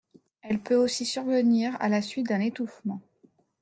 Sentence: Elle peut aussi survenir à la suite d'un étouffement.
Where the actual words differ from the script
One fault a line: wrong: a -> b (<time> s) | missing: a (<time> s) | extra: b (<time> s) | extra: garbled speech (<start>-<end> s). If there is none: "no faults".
no faults